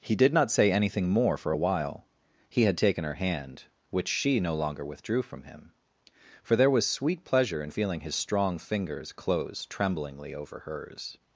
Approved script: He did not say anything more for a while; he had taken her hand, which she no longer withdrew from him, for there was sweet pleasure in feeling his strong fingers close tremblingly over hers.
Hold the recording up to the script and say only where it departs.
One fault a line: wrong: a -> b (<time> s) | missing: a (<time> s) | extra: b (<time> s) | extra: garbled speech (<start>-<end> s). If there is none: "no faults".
no faults